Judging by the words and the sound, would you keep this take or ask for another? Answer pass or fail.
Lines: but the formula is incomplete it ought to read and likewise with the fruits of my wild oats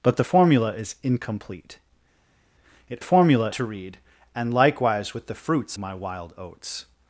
fail